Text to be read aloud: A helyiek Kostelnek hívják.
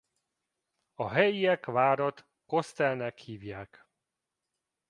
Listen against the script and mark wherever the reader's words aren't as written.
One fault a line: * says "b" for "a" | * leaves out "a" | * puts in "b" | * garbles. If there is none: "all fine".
* puts in "várat"